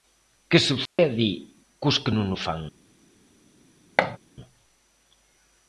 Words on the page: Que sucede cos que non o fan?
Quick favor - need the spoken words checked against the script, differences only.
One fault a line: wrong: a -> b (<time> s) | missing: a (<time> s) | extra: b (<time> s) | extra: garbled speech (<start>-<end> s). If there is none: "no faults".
no faults